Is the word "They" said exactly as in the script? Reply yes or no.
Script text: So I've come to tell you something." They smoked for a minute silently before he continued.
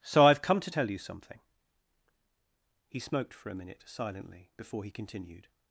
no